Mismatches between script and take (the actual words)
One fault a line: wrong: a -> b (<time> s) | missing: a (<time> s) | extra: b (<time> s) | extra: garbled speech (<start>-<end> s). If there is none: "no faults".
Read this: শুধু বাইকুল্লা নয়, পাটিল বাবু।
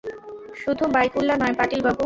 no faults